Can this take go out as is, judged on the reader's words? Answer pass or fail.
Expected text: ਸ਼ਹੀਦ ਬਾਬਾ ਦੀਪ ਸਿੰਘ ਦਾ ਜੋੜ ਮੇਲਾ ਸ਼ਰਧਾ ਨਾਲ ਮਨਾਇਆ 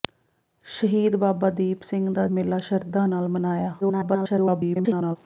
fail